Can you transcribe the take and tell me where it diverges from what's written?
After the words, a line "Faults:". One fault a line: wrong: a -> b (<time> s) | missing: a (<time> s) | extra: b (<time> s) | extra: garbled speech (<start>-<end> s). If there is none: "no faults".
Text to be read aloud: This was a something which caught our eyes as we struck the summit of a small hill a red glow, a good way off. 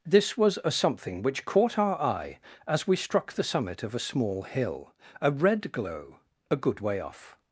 This was a something which caught our eye as we struck the summit of a small hill a red glow, a good way off.
Faults:
wrong: eyes -> eye (2.0 s)